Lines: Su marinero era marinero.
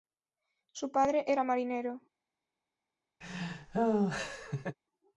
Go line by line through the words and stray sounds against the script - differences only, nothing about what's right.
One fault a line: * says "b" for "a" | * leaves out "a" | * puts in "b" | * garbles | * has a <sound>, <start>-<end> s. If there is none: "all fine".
* says "padre" for "marinero"
* has a laugh, 3.2-4.8 s